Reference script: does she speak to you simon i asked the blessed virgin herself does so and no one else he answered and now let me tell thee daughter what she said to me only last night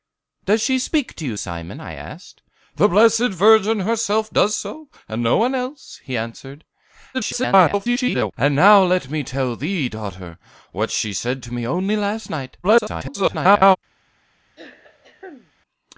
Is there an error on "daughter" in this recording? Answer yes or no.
no